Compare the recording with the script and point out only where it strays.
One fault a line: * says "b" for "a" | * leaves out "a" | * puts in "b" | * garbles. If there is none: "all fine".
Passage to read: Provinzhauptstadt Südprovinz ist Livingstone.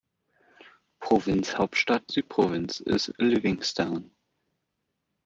all fine